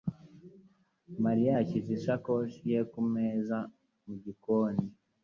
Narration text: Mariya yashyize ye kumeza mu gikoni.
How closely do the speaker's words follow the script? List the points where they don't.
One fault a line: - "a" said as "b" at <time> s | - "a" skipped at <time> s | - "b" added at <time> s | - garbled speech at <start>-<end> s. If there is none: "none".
- "isakoshi" added at 2.0 s